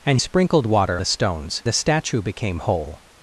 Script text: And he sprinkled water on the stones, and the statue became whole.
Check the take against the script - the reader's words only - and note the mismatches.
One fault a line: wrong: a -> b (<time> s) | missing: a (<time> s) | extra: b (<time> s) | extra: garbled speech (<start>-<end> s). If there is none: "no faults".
missing: he (0.2 s)
missing: on (1.0 s)
missing: and (1.6 s)